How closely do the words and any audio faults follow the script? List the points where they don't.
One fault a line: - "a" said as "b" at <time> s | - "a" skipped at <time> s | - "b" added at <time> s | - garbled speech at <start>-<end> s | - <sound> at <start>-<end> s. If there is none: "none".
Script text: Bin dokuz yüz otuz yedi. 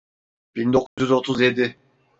- dropout at 0.9-1.0 s